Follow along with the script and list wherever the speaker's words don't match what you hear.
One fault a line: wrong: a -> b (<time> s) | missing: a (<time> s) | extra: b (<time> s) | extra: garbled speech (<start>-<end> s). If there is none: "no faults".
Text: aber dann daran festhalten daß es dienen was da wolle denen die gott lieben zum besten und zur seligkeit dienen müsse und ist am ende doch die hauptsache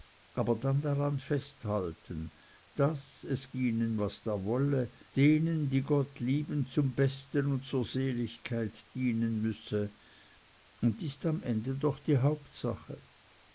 no faults